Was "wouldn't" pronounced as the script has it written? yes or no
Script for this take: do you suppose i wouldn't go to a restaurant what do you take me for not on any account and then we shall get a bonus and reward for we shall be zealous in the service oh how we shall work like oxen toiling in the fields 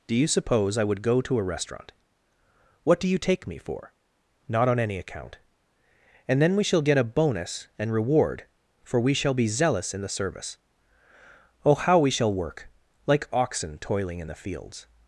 no